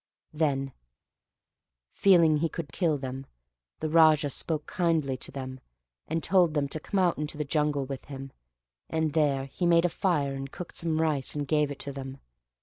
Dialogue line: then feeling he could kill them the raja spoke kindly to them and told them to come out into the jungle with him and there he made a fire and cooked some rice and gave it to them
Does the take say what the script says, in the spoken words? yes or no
yes